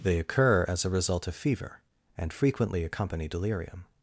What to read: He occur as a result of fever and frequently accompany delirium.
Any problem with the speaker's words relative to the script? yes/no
yes